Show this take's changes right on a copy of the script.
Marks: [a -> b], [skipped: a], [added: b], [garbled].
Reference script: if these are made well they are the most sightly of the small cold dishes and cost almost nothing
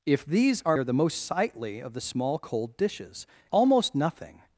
if these are [skipped: made well they] are the most sightly of the small cold dishes [skipped: and cost] almost nothing